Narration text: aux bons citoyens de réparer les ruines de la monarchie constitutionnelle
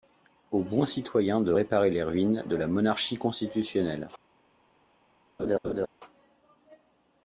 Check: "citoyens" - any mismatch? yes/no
no